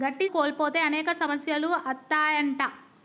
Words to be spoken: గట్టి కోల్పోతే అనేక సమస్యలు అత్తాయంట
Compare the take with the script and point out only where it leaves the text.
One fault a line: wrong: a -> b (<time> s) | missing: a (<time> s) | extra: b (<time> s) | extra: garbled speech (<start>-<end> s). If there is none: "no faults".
no faults